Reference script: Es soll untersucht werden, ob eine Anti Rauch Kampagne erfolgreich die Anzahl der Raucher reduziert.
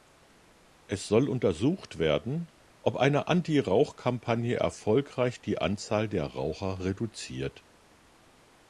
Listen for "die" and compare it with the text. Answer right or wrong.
right